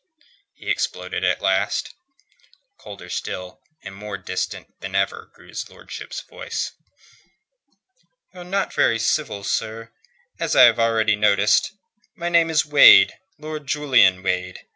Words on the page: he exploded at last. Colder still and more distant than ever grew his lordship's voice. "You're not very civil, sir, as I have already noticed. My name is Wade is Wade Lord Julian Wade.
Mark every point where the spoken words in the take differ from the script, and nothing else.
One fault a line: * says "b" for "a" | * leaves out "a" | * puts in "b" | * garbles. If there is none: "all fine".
* leaves out "is Wade"